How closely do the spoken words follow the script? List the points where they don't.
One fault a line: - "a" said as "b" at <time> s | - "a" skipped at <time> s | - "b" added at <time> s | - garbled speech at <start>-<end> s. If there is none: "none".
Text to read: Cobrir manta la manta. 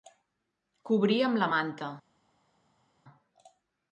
- "manta" said as "amb" at 1.3 s